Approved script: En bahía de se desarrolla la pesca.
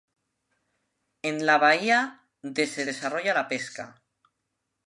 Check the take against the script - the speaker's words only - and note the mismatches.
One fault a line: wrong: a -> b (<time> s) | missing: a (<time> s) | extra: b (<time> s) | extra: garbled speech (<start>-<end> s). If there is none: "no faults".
extra: la (1.4 s)